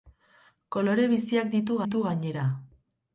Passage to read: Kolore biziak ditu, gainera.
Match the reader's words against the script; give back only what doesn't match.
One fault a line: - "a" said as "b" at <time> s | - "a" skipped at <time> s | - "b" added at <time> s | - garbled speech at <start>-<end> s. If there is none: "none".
- "ditu" added at 1.8 s